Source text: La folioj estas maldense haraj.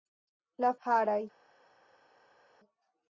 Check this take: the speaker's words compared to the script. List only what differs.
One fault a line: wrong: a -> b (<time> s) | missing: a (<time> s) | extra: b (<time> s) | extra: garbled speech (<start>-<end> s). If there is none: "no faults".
missing: folioj estas maldense (0.7 s)